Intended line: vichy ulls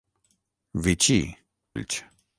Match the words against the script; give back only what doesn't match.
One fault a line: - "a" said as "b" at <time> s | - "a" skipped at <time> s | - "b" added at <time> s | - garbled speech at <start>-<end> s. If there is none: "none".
none